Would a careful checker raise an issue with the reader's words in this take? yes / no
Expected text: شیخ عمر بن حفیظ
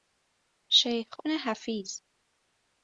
yes